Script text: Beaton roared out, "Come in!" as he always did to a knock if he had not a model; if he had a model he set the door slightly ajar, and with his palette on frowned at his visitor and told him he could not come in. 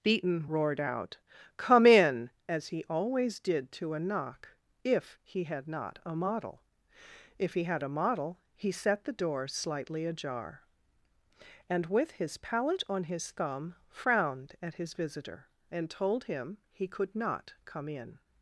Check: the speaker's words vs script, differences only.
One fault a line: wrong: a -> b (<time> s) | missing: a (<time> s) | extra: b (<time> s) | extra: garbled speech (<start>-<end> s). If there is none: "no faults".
extra: his thumb (13.1 s)